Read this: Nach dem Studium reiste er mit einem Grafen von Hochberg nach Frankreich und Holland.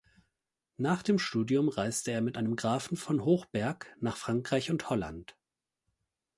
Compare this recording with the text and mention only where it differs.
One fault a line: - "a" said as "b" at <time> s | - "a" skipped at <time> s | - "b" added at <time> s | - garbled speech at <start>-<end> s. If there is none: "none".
none